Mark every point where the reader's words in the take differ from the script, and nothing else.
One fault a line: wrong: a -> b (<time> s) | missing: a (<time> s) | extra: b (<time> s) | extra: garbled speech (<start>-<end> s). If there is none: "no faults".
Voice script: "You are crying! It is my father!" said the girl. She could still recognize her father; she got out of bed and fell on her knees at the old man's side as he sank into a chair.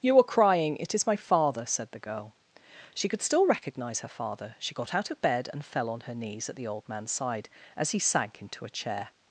no faults